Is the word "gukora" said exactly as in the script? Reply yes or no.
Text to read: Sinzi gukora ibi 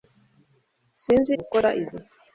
yes